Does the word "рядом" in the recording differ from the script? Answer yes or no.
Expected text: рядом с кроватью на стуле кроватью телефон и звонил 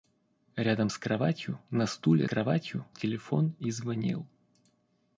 no